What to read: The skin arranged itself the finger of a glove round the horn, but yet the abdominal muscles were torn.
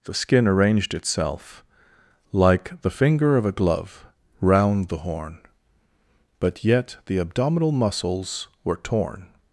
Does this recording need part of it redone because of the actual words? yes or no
yes